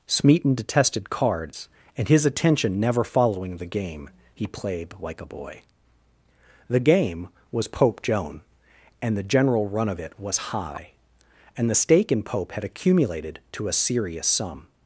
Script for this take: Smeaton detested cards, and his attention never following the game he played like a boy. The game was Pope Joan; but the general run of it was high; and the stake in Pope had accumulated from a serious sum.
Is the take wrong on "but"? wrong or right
wrong